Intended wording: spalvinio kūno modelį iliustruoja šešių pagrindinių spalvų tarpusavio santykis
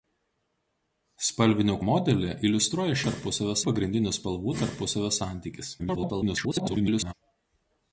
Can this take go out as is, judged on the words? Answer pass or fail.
fail